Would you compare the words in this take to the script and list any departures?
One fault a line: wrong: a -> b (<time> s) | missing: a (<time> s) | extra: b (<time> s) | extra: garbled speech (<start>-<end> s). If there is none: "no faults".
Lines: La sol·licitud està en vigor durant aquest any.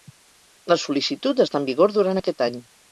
no faults